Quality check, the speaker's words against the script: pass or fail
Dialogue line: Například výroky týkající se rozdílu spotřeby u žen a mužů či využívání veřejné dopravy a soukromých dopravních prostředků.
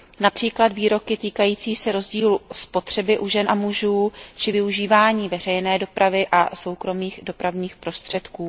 pass